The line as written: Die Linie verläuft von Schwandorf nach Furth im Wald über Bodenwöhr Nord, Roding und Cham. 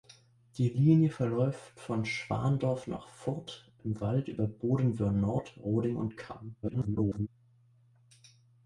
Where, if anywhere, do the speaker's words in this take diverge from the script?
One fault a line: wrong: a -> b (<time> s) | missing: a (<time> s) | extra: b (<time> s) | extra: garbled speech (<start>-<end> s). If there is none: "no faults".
extra: garbled speech (6.6-7.3 s)